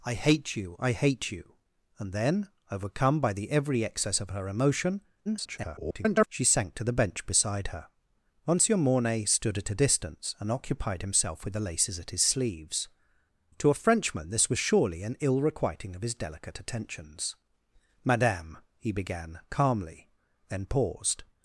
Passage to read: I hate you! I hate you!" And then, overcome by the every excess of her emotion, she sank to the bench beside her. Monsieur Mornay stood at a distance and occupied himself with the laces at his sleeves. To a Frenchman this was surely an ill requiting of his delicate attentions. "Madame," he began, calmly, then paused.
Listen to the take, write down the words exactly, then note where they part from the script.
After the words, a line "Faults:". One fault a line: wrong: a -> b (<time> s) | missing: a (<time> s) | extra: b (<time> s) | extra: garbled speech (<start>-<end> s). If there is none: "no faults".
I hate you! I hate you!" And then, overcome by the every excess of her emotion, [garbled] she sank to the bench beside her. Monsieur Mornay stood at a distance and occupied himself with the laces at his sleeves. To a Frenchman this was surely an ill requiting of his delicate attentions. "Madame," he began, calmly, then paused.
Faults:
extra: garbled speech (5.3-6.3 s)